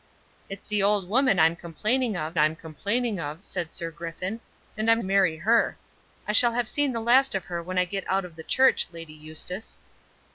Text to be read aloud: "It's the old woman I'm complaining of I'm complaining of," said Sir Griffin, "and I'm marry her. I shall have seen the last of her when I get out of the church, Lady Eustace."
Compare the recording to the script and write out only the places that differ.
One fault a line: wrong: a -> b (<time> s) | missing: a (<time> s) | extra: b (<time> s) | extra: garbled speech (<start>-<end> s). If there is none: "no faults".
no faults